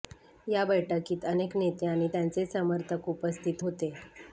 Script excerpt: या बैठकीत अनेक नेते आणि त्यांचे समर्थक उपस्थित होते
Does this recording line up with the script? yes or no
yes